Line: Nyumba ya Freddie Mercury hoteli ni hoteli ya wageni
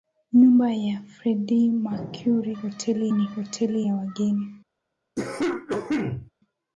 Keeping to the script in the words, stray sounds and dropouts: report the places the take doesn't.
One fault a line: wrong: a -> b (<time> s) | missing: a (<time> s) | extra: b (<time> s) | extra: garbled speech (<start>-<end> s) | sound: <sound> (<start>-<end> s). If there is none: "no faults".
sound: cough (5.2-6.3 s)